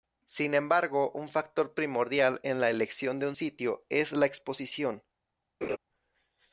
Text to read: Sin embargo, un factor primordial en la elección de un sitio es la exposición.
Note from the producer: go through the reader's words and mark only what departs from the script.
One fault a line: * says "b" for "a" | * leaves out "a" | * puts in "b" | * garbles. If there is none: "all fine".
all fine